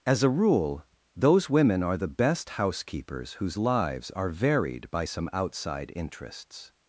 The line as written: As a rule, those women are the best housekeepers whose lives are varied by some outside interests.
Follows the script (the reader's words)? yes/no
yes